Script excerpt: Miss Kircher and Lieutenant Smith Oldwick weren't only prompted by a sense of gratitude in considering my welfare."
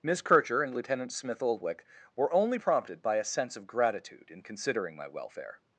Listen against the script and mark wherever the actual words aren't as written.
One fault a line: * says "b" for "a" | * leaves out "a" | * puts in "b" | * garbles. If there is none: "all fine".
* says "were" for "weren't"